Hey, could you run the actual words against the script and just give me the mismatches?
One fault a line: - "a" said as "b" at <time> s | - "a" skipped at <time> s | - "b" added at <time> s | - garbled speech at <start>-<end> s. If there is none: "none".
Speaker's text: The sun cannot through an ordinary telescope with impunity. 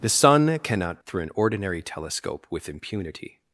none